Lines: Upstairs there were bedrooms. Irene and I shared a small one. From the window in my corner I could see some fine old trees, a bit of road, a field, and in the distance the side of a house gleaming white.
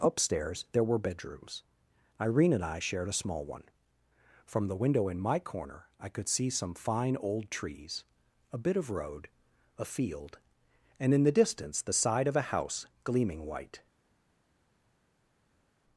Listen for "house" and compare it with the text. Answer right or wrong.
right